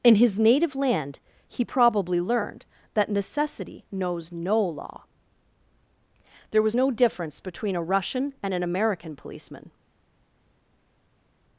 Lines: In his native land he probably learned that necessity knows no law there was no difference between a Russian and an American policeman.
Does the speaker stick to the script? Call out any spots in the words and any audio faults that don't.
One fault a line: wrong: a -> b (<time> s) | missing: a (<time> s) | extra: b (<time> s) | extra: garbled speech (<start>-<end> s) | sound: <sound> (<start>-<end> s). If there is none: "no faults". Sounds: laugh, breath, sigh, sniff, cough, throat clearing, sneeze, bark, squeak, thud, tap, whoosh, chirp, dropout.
no faults